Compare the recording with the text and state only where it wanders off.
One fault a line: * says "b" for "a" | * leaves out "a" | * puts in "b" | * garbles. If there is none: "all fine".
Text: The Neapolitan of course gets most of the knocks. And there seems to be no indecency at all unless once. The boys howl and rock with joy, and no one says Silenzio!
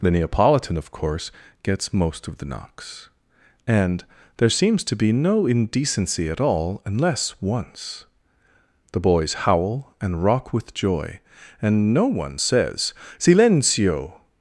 all fine